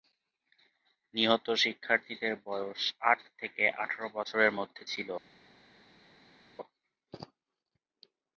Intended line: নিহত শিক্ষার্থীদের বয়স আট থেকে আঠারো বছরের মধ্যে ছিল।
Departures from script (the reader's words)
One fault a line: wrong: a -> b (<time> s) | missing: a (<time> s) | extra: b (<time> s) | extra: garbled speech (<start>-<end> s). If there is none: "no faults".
no faults